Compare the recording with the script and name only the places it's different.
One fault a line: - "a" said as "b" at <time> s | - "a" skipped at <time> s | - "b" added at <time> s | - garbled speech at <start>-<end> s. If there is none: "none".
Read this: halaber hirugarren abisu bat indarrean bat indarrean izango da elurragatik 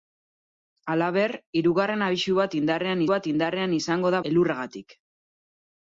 none